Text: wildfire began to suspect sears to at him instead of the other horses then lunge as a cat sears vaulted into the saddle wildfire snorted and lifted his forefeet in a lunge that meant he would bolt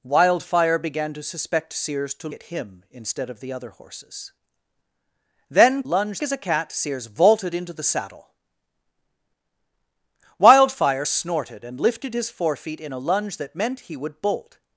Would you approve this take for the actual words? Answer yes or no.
yes